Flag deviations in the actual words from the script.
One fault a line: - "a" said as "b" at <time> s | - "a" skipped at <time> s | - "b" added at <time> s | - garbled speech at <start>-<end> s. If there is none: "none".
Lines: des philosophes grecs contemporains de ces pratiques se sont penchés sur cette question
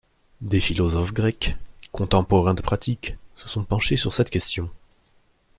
- "ces" skipped at 2.6 s